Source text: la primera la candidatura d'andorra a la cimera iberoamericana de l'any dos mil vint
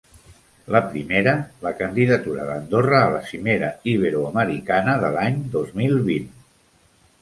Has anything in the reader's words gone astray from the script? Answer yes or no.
no